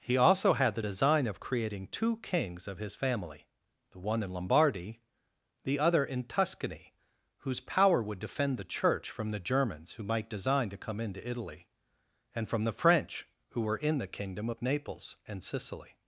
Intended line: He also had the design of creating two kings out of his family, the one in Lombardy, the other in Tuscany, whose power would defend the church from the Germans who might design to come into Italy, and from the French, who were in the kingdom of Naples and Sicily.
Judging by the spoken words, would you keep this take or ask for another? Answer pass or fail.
fail